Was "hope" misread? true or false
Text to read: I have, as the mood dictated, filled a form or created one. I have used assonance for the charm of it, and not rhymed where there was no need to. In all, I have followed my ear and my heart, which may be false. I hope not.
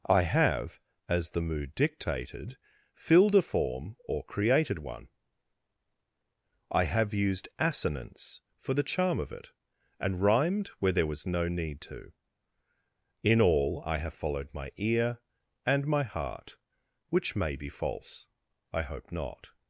false